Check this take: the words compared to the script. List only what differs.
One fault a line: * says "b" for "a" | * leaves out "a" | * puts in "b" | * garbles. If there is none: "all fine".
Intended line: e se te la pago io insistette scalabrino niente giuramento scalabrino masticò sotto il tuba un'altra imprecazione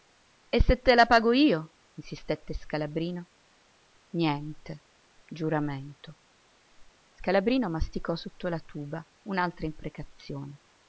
* says "la" for "il"